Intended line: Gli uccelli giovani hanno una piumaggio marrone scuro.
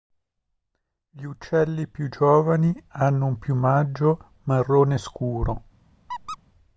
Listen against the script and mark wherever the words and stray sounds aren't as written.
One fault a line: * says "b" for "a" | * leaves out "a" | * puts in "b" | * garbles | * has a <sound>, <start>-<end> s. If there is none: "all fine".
* puts in "più"
* says "un" for "una"
* has a squeak, 6.1-6.4 s